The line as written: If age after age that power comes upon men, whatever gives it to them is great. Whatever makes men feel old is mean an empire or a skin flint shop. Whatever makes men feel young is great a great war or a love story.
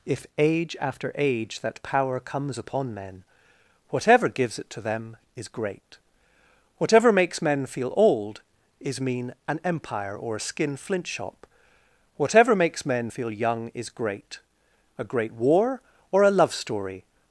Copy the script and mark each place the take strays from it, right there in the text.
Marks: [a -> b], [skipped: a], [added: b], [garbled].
If age after age that power comes upon men, whatever gives it to them is great. Whatever makes men feel old is mean an empire or a skin flint shop. Whatever makes men feel young is great a great war or a love story.